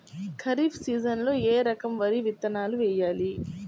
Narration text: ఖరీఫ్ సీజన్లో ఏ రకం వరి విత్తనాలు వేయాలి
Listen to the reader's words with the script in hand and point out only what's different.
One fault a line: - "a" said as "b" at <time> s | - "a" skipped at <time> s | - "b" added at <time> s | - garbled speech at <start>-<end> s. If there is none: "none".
none